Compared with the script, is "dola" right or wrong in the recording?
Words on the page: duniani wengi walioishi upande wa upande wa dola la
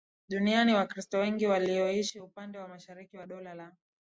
right